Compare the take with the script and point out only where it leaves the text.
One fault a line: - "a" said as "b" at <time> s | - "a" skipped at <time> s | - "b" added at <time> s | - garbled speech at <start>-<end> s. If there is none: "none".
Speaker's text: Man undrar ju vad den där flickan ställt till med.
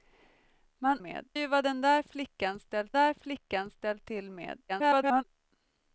- "undrar" said as "med" at 1.0 s
- "där flickan ställt" added at 2.9 s
- garbled speech at 4.7-5.2 s